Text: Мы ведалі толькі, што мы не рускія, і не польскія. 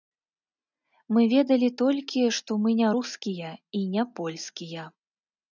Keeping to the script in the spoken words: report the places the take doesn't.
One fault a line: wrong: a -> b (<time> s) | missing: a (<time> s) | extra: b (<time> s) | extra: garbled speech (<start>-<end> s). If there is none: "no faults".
no faults